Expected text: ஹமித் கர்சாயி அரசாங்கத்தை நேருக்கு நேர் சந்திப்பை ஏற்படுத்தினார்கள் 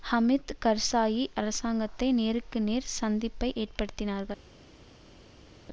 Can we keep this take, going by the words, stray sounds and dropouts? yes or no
yes